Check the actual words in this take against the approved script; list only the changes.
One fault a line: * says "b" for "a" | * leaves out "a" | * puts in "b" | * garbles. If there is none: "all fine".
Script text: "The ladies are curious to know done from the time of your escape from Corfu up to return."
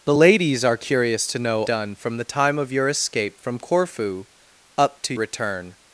all fine